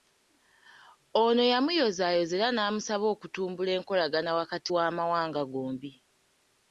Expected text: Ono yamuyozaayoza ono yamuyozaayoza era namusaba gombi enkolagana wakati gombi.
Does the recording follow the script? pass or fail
fail